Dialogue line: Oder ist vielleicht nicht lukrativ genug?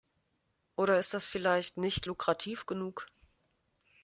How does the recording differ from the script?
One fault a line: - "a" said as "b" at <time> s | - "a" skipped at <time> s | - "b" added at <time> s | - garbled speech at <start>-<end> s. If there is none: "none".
- "das" added at 1.1 s